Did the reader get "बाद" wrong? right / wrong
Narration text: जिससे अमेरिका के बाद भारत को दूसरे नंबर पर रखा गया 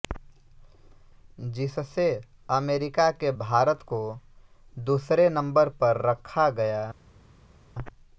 wrong